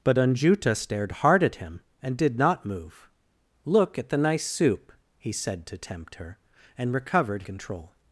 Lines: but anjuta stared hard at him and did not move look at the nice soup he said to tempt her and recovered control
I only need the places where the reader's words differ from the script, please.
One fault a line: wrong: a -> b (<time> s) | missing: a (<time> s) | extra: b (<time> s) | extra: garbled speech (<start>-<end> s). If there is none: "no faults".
no faults